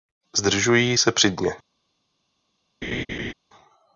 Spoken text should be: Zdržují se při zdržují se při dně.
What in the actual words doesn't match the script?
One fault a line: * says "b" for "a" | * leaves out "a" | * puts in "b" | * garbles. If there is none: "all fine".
* leaves out "zdržují se při"